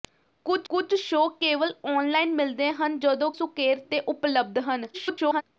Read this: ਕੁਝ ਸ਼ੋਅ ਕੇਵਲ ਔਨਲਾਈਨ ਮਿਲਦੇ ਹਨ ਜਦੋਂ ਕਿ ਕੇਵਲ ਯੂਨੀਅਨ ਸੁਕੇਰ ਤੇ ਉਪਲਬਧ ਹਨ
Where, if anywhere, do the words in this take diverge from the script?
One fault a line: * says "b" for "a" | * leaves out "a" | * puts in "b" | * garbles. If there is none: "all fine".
* puts in "ਕੁਝ"
* leaves out "ਕਿ ਕੇਵਲ ਯੂਨੀਅਨ"
* garbles